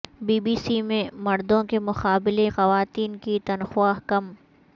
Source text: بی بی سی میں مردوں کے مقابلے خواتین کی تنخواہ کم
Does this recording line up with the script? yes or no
yes